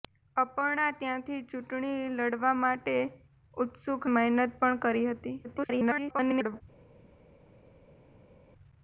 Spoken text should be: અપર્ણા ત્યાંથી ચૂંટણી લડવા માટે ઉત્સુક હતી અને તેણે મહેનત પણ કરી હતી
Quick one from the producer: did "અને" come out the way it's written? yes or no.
no